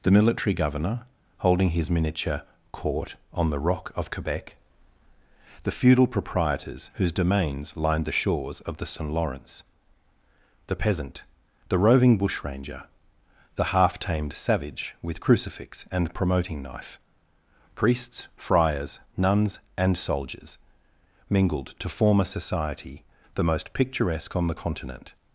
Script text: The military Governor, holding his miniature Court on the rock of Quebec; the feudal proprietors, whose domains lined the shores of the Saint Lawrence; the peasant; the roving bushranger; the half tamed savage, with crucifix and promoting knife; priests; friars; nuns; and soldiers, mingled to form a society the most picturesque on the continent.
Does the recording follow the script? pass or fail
pass